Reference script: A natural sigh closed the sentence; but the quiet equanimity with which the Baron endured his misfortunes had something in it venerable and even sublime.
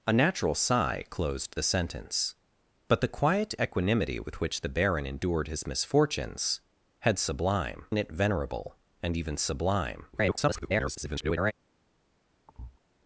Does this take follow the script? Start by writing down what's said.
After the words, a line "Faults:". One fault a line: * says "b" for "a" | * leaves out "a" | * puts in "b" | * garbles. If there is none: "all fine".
A natural sigh closed the sentence; but the quiet equanimity with which the Baron endured his misfortunes had sublime in it venerable and even sublime. [garbled]
Faults:
* says "sublime" for "something"
* garbles